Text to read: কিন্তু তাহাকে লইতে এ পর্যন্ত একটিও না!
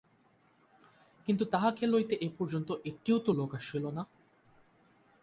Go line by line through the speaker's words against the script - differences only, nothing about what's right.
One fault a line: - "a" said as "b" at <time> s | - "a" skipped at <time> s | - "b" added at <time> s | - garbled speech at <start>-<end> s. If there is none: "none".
- "তো লোক আসিল" added at 3.2 s